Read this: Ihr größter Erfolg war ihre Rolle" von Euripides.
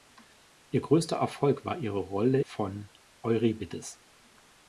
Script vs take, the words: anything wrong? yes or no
no